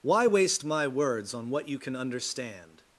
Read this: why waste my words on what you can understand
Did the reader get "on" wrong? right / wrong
right